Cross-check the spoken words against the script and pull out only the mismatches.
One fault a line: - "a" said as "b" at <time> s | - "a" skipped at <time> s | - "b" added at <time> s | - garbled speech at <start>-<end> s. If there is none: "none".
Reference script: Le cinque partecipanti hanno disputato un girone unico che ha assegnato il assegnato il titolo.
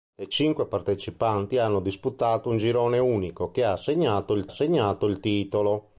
none